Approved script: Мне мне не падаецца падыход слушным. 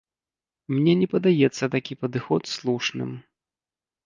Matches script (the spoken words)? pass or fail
fail